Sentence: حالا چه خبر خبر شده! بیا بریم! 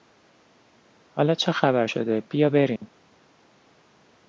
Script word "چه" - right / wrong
right